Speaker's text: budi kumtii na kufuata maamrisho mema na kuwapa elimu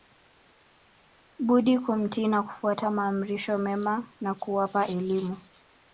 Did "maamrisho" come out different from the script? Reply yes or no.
no